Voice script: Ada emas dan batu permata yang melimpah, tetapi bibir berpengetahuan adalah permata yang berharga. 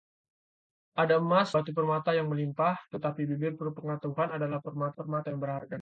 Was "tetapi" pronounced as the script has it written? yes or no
yes